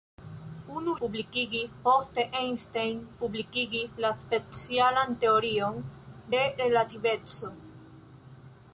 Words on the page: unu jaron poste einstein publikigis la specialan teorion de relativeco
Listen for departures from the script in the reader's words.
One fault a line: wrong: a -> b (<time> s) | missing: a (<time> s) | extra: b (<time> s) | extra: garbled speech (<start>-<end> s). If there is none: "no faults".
wrong: jaron -> publikigis (1.0 s)